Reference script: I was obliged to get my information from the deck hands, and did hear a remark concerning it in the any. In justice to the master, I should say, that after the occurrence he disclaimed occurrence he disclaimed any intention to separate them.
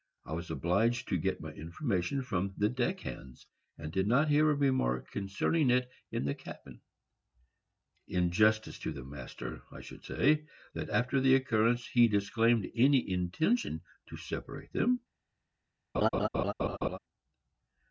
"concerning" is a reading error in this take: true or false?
false